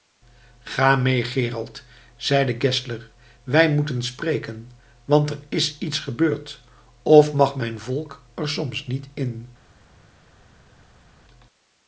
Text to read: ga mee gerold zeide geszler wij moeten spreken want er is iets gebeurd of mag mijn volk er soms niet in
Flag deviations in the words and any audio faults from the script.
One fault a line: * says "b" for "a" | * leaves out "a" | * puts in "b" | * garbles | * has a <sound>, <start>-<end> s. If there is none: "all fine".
all fine